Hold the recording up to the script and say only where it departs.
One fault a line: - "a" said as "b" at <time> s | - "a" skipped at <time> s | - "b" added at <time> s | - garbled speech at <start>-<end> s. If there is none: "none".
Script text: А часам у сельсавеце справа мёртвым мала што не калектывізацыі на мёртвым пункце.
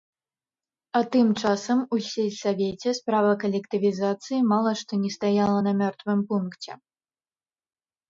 - "тым" added at 1.1 s
- "мёртвым" said as "калектывізацыі" at 3.4 s
- "калектывізацыі" said as "стаяла" at 5.2 s